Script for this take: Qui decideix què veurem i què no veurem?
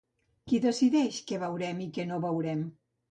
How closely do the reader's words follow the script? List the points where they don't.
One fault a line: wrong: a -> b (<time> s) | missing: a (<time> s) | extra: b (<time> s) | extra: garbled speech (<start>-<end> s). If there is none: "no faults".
no faults